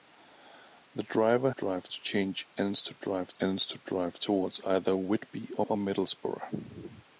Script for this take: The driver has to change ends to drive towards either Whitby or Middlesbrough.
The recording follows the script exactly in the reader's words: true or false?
false